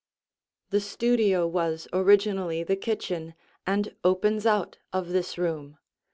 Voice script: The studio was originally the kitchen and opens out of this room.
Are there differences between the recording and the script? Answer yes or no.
no